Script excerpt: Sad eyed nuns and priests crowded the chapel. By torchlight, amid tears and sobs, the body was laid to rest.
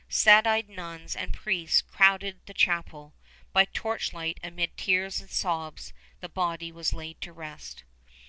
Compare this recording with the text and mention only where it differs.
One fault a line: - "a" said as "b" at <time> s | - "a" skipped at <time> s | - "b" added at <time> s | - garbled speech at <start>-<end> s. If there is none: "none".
none